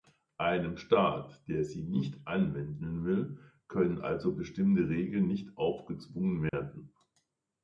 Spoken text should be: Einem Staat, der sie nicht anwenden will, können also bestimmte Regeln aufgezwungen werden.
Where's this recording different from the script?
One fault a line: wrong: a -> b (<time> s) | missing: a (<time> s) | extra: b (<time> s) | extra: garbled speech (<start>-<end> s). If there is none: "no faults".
extra: nicht (5.3 s)